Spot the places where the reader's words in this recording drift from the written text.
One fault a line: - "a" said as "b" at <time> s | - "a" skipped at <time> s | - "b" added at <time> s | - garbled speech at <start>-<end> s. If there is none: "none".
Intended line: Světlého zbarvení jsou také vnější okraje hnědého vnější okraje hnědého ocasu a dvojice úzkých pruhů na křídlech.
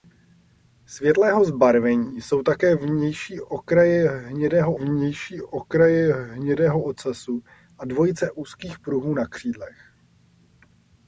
none